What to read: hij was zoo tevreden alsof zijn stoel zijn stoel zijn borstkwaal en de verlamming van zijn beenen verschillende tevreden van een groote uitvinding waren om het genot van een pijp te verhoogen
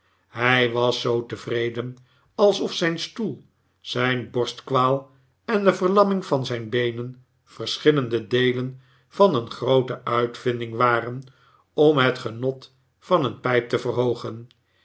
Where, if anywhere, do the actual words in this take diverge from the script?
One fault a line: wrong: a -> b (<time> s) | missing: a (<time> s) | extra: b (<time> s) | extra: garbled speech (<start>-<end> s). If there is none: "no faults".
missing: stoel zijn (4.3 s)
wrong: tevreden -> deelen (8.3 s)